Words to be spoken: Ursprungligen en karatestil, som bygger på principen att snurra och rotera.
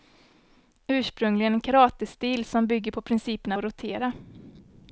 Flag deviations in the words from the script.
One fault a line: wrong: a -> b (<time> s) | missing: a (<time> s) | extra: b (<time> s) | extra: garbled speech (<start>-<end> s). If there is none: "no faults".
missing: att snurra (3.5 s)